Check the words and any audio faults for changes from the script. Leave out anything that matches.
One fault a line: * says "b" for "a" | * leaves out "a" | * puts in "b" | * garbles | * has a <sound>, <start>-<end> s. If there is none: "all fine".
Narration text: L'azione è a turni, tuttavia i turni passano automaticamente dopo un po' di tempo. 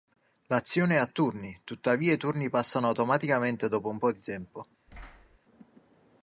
* has a thud, 4.9-5.4 s